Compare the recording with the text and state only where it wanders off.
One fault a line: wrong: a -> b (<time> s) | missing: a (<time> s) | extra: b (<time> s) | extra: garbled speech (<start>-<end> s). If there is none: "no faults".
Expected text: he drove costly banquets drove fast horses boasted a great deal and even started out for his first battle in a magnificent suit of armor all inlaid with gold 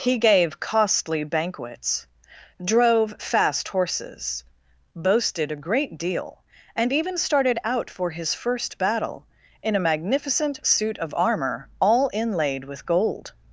wrong: drove -> gave (0.2 s)